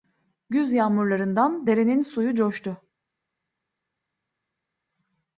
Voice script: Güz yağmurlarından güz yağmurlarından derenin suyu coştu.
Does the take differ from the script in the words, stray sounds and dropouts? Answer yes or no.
yes